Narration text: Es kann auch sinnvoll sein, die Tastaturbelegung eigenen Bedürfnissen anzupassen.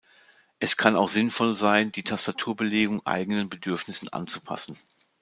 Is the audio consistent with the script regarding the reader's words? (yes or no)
yes